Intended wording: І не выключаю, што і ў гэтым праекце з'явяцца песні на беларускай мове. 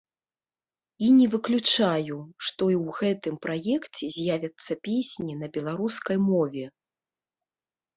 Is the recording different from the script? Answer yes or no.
no